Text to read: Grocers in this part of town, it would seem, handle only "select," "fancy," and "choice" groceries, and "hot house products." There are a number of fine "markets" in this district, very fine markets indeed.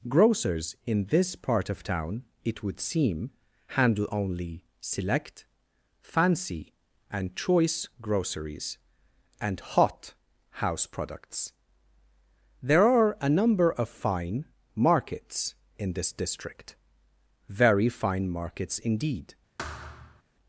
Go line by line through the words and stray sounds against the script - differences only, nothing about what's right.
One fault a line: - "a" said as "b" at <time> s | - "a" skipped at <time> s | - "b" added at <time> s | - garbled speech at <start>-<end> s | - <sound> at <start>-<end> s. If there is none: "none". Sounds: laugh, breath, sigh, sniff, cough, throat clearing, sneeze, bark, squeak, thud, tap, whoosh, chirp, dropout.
- thud at 19.6-20.2 s